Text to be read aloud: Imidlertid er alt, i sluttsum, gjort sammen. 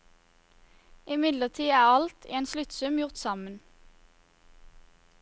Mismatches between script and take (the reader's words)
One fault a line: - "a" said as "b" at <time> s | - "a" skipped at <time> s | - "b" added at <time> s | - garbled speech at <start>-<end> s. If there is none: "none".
- "en" added at 2.4 s